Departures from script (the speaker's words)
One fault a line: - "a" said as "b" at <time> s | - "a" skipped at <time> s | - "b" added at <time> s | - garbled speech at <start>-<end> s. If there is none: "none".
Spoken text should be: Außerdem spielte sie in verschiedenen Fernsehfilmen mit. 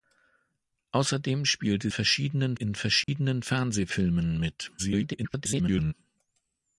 - "sie" said as "verschiedenen" at 1.9 s
- garbled speech at 4.8-5.9 s